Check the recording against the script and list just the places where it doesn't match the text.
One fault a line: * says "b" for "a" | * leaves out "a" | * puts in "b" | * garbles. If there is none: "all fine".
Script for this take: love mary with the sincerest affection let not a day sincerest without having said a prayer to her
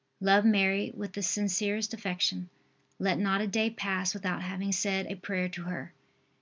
* says "pass" for "sincerest"